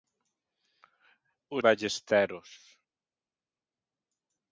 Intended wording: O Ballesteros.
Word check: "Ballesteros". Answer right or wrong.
right